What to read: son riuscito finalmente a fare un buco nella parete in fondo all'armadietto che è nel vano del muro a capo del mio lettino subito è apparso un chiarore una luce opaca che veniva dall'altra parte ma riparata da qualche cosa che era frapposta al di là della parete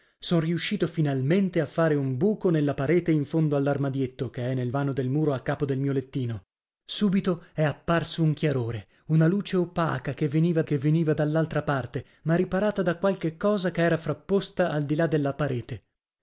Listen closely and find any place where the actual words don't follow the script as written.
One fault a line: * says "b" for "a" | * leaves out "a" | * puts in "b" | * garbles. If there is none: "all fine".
* puts in "che veniva"